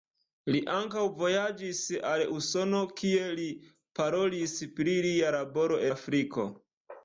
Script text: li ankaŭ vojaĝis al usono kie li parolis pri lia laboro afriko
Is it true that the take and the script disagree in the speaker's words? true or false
false